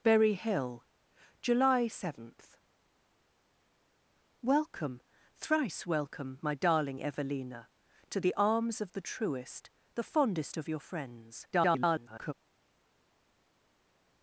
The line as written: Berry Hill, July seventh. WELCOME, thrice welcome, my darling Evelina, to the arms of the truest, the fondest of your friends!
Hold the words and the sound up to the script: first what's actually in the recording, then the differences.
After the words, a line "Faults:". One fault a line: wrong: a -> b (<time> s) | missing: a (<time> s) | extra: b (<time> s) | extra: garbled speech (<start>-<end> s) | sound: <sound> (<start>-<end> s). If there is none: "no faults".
Berry Hill, July seventh. WELCOME, thrice welcome, my darling Evelina, to the arms of the truest, the fondest of your friends! [garbled]
Faults:
extra: garbled speech (11.5-12.3 s)